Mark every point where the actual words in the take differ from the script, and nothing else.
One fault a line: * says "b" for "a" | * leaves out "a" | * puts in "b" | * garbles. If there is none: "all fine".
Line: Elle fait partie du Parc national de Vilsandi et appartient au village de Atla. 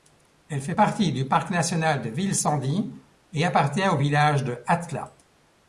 all fine